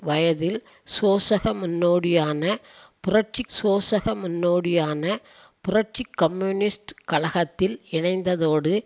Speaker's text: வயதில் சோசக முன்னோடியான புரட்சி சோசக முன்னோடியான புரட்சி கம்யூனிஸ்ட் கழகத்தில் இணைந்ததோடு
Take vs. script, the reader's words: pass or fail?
pass